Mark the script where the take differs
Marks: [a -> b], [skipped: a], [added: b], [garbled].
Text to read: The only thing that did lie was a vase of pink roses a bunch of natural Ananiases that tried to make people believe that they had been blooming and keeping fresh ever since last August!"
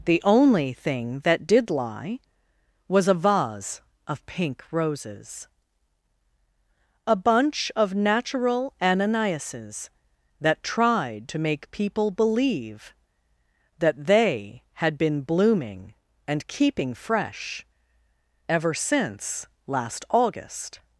The only thing that did lie was a vase of pink roses a bunch of natural Ananiases that tried to make people believe that they had been blooming and keeping fresh ever since last August!"